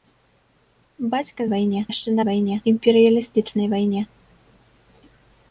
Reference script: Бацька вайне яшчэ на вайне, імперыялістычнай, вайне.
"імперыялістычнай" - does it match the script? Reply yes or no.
yes